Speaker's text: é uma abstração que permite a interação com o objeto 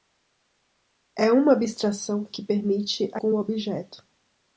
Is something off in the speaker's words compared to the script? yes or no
yes